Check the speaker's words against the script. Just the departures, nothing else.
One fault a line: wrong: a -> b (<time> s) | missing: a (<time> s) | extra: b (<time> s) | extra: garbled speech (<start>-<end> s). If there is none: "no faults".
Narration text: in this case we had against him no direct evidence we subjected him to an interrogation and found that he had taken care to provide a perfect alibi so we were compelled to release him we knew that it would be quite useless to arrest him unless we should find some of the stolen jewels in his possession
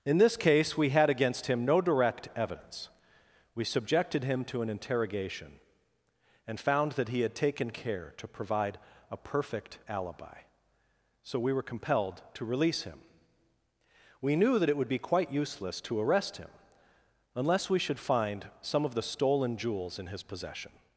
no faults